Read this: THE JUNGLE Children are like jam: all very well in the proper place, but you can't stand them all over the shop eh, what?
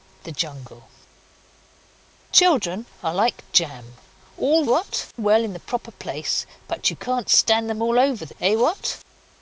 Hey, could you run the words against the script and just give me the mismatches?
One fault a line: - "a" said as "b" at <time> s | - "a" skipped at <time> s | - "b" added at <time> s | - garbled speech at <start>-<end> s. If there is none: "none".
- "very" said as "what" at 4.6 s
- "shop" skipped at 8.3 s